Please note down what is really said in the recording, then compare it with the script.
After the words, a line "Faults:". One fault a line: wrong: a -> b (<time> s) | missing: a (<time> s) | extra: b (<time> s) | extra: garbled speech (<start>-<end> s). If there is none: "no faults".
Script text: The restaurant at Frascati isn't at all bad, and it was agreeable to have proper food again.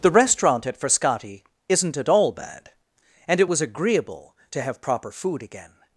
The restaurant at Frascati isn't at all bad, and it was agreeable to have proper food again.
Faults:
no faults